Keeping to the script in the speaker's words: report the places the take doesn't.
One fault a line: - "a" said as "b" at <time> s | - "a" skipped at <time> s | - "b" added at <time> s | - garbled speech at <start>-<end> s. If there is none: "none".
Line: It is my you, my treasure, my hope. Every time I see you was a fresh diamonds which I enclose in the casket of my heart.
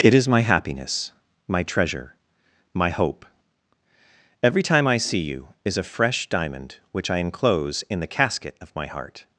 - "you" said as "happiness" at 0.4 s
- "was" said as "is" at 5.6 s
- "diamonds" said as "diamond" at 6.3 s